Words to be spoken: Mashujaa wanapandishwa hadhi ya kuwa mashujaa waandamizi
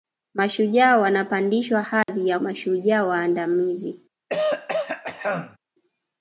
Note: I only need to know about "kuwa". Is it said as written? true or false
false